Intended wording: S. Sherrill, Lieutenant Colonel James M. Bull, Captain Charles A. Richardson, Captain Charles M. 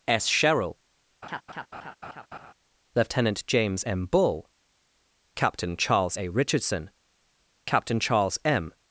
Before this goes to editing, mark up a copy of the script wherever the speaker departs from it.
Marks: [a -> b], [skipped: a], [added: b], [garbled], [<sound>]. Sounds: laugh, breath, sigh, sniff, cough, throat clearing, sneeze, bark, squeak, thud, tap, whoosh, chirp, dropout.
S. Sherrill, [laugh] Lieutenant [skipped: Colonel] James M. Bull, Captain Charles A. Richardson, Captain Charles M.